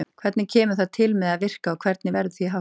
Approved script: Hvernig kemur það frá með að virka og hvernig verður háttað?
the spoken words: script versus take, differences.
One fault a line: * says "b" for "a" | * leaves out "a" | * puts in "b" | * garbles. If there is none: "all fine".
* says "til" for "frá"
* puts in "því"